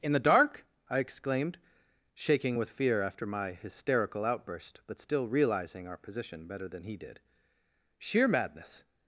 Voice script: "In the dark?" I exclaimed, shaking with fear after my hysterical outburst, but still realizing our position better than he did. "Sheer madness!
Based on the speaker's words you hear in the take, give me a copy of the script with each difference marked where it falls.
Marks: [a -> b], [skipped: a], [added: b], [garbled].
"In the dark?" I exclaimed, shaking with fear after my hysterical outburst, but still realizing our position better than he did. "Sheer madness!